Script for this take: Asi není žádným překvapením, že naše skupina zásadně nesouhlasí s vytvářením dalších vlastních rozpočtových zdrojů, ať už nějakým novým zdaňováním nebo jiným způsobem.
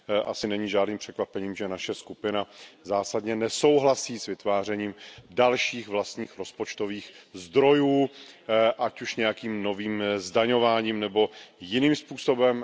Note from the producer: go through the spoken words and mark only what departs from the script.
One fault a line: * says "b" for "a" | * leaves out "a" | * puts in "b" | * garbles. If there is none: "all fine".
all fine